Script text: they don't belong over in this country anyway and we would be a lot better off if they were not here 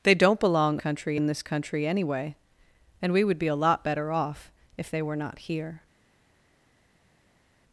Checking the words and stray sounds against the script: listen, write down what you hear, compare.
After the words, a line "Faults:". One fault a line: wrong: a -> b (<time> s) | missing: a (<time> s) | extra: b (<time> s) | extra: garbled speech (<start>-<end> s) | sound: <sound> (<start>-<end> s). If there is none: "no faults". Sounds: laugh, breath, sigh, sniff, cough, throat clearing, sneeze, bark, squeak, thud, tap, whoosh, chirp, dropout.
they don't belong country in this country anyway and we would be a lot better off if they were not here
Faults:
wrong: over -> country (0.8 s)